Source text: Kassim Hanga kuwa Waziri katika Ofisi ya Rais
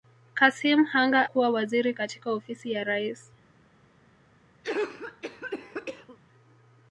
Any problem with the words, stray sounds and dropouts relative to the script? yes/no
yes